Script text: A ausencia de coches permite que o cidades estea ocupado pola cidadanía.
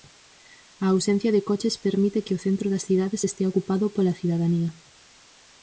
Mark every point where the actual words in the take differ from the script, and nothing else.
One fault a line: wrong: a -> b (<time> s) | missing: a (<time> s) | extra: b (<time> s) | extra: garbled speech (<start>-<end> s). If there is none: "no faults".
extra: centro das (2.5 s)